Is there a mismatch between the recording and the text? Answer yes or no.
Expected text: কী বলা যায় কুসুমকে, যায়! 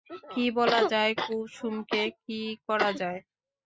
yes